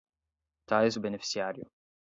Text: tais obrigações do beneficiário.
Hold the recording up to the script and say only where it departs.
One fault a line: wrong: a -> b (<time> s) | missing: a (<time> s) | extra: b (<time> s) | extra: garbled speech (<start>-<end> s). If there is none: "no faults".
missing: obrigações (1.0 s)